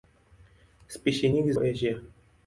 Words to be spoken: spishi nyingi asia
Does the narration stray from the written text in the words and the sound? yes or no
no